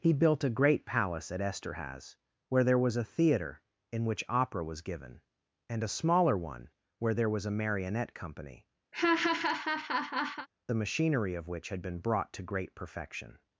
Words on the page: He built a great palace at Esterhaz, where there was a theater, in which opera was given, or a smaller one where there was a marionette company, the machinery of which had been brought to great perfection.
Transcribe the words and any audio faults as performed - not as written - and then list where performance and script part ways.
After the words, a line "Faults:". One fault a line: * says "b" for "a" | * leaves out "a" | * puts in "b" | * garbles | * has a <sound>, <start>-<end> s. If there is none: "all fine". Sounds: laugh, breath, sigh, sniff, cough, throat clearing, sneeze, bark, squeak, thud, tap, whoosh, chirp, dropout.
He built a great palace at Esterhaz, where there was a theater, in which opera was given, and a smaller one where there was a marionette company, the machinery of which had been brought to great perfection.
Faults:
* says "and" for "or"
* has a laugh, 8.9-10.5 s